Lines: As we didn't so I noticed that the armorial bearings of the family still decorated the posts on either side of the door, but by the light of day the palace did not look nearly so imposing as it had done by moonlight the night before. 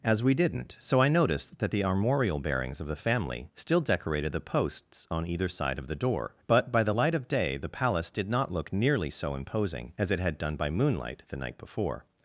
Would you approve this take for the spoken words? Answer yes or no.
yes